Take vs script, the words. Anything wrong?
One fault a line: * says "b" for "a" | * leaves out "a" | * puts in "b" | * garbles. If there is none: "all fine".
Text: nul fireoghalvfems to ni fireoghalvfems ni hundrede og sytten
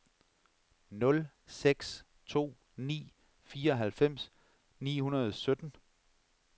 * says "seks" for "fireoghalvfems"